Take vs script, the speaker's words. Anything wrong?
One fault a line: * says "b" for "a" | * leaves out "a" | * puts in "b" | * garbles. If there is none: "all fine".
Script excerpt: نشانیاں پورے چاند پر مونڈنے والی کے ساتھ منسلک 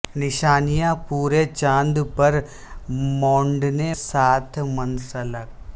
* leaves out "والی کے"